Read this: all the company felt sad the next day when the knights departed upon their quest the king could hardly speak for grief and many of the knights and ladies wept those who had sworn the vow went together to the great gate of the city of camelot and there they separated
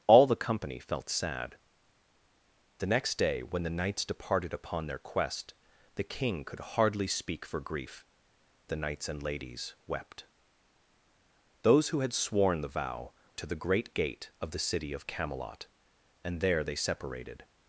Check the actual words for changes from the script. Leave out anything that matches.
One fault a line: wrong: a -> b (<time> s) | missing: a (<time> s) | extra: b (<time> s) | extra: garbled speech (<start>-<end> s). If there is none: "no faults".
missing: and many of (8.1 s)
missing: went together (13.1 s)